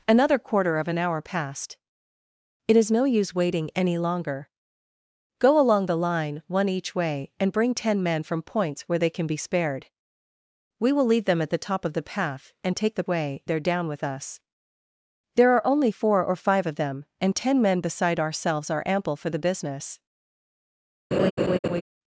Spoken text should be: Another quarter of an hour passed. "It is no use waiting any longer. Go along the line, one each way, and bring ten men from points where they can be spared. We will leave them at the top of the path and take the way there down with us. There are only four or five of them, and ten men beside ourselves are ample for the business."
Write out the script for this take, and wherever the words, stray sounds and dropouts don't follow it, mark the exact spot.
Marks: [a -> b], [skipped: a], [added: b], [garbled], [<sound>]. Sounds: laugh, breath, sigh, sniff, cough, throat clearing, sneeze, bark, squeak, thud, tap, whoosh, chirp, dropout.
Another quarter of an hour passed. "It is no use waiting any longer. Go along the line, one each way, and bring ten men from points where they can be spared. We will leave them at the top of the path and take the way there down with us. There are only four or five of them, and ten men beside ourselves are ample for the business." [laugh]